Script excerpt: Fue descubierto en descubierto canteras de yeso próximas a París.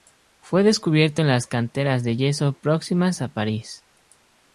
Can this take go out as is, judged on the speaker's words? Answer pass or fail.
fail